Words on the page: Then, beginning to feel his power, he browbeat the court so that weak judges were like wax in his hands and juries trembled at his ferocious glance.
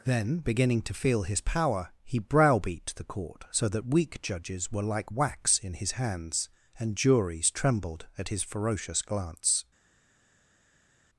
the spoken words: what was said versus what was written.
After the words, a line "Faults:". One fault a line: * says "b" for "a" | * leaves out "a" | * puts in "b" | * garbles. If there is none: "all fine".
Then, beginning to feel his power, he browbeat the court so that weak judges were like wax in his hands and juries trembled at his ferocious glance.
Faults:
all fine